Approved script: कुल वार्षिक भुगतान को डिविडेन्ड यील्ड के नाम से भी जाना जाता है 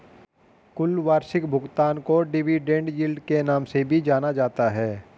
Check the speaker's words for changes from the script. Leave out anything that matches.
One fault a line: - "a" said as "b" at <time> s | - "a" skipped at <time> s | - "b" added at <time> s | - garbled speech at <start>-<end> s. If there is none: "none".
none